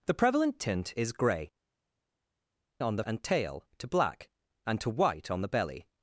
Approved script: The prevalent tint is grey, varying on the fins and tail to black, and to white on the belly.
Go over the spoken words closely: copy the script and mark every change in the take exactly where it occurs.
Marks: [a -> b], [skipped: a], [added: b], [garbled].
The prevalent tint is grey, [skipped: varying] on the [skipped: fins] and tail to black, and to white on the belly.